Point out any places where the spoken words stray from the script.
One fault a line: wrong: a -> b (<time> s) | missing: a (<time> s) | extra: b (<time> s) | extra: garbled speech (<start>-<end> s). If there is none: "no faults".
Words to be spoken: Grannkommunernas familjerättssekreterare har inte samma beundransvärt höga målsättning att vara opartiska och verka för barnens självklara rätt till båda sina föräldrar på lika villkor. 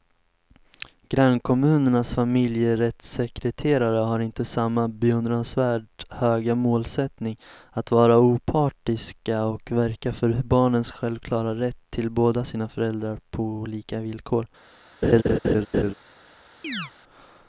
no faults